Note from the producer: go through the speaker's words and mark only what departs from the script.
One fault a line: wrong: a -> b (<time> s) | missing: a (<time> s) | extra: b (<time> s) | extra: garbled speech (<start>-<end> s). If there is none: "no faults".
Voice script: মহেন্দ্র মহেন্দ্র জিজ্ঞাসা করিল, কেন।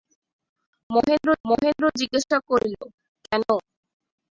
no faults